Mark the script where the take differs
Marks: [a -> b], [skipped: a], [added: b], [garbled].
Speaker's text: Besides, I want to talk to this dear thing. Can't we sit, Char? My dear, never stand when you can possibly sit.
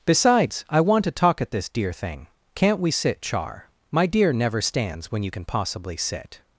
Besides, I want to talk [to -> at] this dear thing. Can't we sit, Char? My dear, never [stand -> stands] when you can possibly sit.